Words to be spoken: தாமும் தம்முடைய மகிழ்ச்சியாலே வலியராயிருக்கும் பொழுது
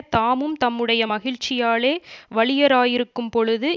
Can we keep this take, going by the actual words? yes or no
yes